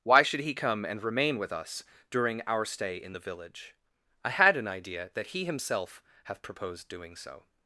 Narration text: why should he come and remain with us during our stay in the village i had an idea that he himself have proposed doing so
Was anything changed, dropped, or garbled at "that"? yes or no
no